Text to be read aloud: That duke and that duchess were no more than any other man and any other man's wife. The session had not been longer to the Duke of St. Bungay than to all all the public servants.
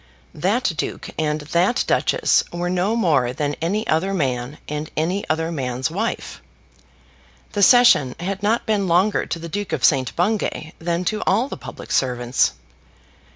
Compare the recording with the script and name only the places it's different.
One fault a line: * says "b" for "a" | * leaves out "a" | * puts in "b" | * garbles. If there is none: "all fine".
* leaves out "all"